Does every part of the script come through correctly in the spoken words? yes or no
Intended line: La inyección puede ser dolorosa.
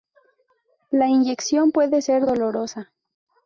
yes